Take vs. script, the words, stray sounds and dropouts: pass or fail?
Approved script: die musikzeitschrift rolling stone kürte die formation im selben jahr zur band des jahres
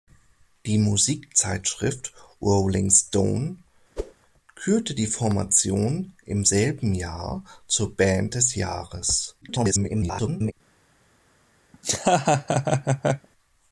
fail